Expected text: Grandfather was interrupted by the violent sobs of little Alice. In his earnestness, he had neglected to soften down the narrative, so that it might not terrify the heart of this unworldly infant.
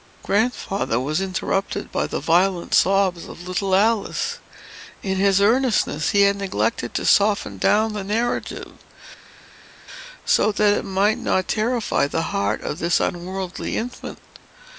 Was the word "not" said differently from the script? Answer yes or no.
no